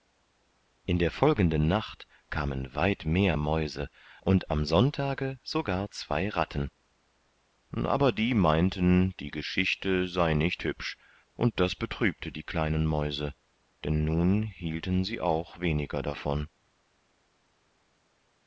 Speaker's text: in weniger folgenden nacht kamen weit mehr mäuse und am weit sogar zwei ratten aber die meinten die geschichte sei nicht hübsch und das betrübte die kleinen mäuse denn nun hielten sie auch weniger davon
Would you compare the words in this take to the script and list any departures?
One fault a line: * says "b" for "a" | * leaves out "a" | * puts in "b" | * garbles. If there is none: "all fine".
* says "der" for "weniger"
* says "sonntage" for "weit"